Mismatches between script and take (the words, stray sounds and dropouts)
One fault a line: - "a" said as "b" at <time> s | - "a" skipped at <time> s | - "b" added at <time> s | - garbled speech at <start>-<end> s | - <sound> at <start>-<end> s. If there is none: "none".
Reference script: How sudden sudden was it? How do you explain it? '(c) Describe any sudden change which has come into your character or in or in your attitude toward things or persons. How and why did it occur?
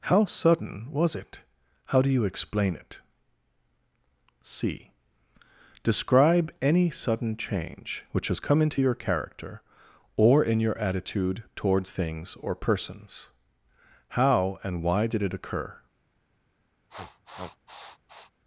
- "sudden" skipped at 0.9 s
- "or in" skipped at 10.6 s
- sniff at 16.9-18.3 s